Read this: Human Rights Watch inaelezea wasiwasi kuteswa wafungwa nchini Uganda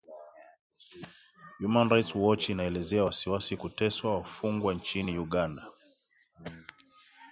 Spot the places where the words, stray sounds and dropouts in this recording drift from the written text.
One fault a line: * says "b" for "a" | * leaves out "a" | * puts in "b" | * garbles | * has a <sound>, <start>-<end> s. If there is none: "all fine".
all fine